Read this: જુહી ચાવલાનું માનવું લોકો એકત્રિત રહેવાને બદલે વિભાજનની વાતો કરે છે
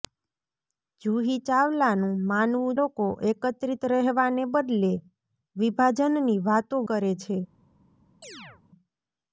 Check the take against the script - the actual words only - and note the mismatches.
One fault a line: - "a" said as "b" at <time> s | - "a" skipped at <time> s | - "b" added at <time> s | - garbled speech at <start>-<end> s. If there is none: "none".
none